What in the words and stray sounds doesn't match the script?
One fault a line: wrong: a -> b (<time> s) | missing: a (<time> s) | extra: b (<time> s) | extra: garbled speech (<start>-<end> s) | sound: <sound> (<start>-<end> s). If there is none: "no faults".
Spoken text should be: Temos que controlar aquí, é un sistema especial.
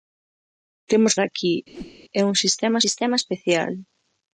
missing: que controlar (1.1 s)
sound: whoosh (1.7-2.0 s)
extra: sistema (2.8 s)